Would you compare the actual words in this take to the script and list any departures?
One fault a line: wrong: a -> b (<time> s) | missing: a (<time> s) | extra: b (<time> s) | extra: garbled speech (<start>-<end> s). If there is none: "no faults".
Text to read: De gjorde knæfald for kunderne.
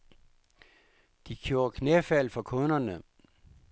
no faults